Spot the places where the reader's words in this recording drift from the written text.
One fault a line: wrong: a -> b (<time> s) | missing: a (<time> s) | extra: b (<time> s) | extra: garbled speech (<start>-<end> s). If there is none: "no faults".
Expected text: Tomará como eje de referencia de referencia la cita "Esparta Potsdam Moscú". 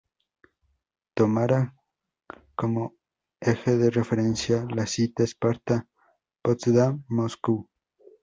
missing: de referencia (4.7 s)